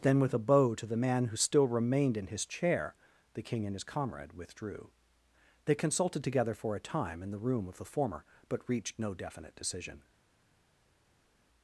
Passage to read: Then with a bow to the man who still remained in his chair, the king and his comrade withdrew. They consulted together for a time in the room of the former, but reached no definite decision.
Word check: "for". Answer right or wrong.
right